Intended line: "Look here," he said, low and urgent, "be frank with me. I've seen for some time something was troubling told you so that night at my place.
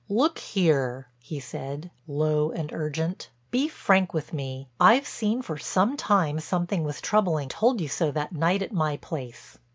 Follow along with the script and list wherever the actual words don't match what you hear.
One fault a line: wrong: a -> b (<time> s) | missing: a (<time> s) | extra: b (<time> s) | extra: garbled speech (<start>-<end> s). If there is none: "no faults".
no faults